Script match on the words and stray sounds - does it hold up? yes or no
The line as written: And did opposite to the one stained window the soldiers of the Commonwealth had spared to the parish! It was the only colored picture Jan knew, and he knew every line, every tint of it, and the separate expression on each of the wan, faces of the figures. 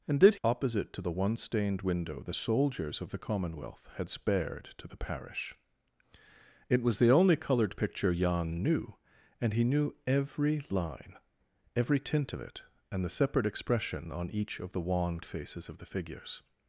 yes